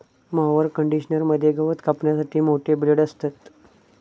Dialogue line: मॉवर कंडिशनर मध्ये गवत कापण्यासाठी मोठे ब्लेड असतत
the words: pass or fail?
pass